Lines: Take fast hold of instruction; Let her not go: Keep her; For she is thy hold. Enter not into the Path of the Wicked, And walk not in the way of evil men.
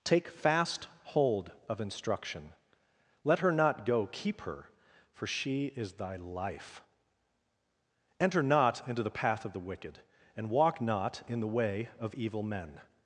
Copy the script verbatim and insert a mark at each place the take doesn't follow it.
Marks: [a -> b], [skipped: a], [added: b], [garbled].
Take fast hold of instruction; Let her not go: Keep her; For she is thy [hold. -> life] Enter not into the Path of the Wicked, And walk not in the way of evil men.